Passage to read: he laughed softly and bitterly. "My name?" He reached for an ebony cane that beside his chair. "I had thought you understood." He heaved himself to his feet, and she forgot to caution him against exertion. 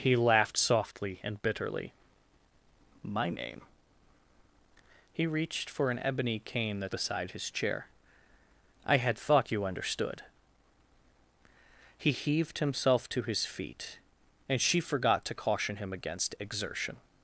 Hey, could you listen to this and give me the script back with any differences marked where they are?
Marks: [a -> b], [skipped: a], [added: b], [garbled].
he laughed softly and bitterly. "My name?" He reached for an ebony cane that beside his chair. "I had thought you understood." He heaved himself to his feet, and she forgot to caution him against exertion.